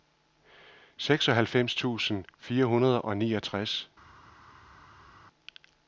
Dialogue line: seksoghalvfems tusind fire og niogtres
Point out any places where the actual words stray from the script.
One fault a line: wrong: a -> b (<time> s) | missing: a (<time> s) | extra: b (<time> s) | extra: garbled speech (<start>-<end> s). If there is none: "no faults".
extra: hundrede (2.7 s)